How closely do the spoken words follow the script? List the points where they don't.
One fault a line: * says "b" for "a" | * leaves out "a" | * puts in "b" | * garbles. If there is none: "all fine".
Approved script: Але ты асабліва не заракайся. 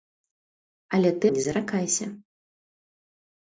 * leaves out "асабліва"